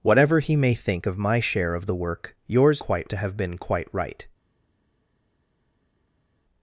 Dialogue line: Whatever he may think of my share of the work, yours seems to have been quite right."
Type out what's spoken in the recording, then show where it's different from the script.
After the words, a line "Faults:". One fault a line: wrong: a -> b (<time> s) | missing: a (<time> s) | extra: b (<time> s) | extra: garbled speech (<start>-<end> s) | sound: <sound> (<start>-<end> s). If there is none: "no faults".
Whatever he may think of my share of the work, yours quite to have been quite right."
Faults:
wrong: seems -> quite (2.8 s)